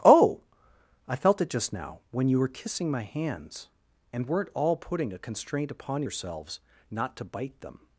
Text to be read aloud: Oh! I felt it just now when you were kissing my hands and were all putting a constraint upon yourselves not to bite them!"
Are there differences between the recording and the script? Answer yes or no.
yes